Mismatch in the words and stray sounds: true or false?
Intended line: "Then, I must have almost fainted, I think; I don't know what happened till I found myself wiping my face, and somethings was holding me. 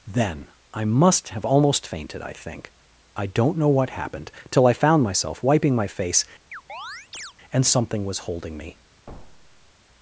true